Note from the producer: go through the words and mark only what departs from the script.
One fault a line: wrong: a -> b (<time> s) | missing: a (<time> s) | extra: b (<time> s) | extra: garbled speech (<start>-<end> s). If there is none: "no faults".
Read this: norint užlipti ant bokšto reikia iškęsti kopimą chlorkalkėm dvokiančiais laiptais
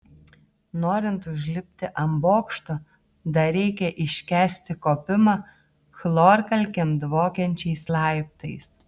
extra: dar (3.4 s)